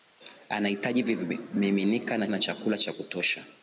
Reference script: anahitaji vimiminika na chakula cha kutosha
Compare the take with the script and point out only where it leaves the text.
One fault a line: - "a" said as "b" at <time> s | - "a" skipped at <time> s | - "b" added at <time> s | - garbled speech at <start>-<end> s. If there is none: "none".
- "na" added at 2.3 s